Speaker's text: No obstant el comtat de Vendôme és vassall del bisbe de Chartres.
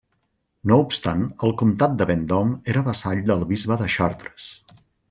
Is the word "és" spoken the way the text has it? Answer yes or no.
no